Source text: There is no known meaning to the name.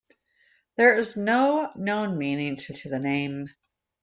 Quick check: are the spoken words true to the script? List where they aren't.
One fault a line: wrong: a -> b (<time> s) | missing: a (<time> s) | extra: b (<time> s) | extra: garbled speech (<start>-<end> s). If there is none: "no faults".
extra: to (2.7 s)